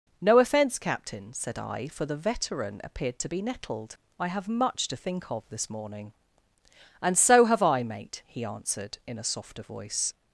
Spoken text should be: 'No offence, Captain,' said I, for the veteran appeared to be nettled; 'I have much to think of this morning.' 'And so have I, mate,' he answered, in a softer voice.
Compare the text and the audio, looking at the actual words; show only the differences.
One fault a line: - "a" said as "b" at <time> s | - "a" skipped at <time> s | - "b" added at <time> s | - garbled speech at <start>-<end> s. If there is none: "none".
none